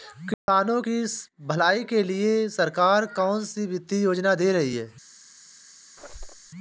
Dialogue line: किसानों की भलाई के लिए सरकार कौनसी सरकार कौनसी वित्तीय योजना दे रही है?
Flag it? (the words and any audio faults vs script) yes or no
yes